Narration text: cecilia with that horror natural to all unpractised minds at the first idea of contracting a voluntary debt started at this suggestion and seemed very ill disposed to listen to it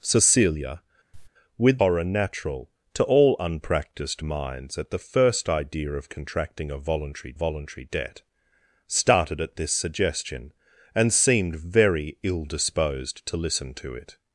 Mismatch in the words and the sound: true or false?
true